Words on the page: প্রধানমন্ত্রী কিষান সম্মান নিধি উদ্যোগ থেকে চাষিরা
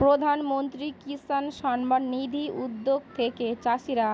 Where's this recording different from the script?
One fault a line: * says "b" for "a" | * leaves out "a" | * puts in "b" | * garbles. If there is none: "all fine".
all fine